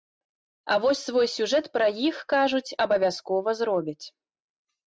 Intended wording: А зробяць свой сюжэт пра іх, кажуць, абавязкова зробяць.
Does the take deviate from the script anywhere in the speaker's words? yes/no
yes